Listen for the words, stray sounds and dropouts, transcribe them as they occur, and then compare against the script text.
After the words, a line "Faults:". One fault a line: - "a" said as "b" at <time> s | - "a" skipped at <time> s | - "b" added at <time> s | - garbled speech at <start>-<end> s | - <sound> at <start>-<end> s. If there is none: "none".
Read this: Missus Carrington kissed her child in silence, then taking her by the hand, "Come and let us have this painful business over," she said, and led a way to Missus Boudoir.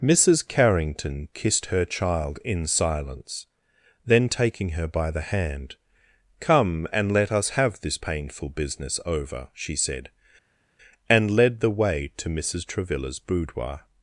Missus Carrington kissed her child in silence, then taking her by the hand, "Come and let us have this painful business over," she said, and led the way to Missus Travilla's boudoir.
Faults:
- "a" said as "the" at 11.6 s
- "Travilla's" added at 12.6 s